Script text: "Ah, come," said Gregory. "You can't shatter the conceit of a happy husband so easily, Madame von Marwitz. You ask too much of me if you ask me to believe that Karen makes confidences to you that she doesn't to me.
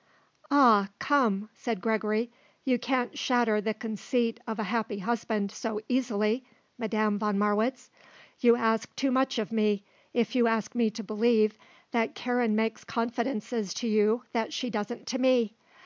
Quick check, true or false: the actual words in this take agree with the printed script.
true